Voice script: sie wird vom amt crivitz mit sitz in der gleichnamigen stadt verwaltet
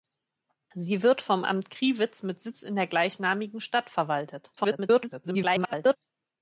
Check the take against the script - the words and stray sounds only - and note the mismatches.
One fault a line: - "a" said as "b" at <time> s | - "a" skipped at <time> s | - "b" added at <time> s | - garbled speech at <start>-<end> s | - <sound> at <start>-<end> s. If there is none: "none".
- garbled speech at 4.6-6.0 s